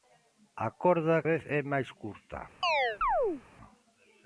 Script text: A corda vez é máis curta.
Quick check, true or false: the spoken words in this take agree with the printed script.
true